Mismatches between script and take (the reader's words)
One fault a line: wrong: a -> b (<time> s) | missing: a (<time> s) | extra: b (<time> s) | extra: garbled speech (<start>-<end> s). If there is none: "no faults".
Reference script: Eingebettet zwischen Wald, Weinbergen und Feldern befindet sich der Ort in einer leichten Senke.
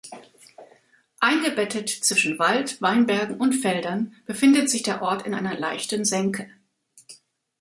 no faults